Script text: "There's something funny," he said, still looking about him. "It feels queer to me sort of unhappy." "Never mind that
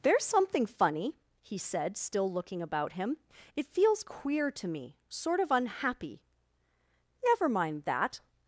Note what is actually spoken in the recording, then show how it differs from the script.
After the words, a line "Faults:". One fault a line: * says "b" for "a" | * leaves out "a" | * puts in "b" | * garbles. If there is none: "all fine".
"There's something funny," he said, still looking about him. "It feels queer to me sort of unhappy." "Never mind that
Faults:
all fine